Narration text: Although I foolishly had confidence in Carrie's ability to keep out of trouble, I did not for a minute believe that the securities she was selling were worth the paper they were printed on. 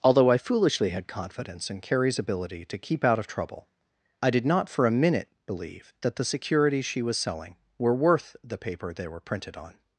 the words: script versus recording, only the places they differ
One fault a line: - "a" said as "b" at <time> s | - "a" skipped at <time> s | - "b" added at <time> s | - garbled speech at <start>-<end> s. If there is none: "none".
none